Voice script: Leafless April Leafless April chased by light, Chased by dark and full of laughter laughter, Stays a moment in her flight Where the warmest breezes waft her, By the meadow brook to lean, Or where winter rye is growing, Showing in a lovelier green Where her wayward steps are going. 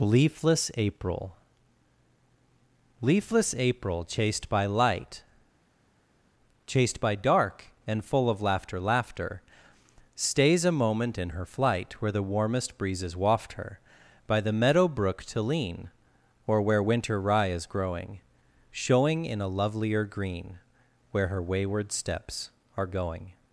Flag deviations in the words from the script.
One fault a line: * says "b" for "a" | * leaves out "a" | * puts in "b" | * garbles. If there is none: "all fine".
all fine